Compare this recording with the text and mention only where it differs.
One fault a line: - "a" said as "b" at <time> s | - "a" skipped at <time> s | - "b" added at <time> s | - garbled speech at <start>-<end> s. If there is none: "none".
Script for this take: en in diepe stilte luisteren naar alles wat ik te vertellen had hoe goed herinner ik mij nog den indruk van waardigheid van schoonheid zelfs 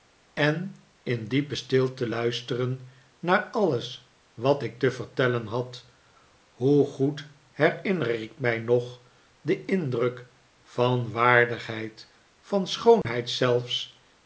none